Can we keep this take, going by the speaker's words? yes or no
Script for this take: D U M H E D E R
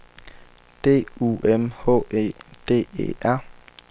yes